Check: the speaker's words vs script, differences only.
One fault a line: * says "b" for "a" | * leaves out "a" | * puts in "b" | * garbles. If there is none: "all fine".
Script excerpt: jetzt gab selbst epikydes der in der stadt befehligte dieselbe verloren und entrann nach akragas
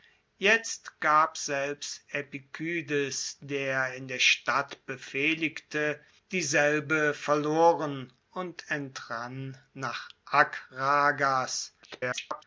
* garbles